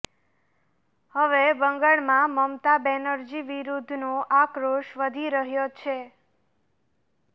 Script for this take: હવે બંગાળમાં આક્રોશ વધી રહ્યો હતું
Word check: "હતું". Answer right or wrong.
wrong